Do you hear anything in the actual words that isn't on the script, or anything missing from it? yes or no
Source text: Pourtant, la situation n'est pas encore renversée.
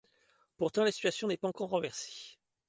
no